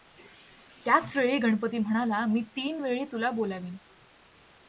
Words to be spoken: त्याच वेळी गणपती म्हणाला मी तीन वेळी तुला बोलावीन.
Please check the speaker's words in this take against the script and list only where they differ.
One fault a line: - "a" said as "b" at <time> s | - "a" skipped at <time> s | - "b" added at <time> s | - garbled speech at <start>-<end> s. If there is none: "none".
none